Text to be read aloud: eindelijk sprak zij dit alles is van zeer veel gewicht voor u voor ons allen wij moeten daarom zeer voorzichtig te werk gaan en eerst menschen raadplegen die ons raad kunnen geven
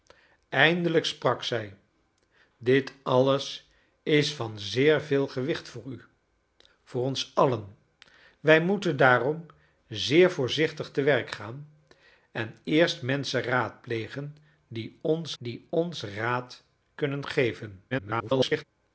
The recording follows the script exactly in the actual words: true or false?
false